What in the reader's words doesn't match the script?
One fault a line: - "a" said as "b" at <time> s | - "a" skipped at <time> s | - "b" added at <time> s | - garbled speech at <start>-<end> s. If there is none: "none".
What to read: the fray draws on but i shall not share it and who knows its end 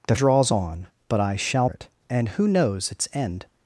- "fray" skipped at 0.1 s
- "not share" skipped at 1.7 s